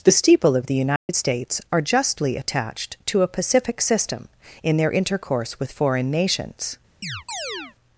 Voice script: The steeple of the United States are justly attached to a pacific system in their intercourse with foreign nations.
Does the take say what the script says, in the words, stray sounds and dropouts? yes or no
no